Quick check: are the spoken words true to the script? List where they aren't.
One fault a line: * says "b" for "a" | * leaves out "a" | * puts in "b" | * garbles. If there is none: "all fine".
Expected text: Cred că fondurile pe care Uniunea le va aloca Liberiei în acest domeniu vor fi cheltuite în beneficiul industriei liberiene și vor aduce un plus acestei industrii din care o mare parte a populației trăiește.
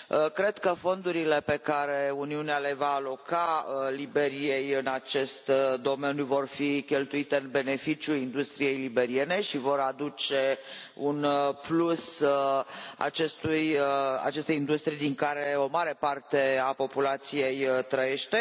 all fine